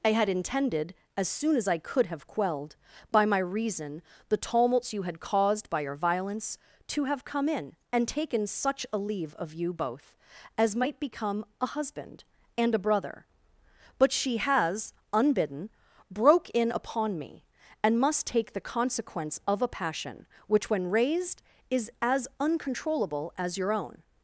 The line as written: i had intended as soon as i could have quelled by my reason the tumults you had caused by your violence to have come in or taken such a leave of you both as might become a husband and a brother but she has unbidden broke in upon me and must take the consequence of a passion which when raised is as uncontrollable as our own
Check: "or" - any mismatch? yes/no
yes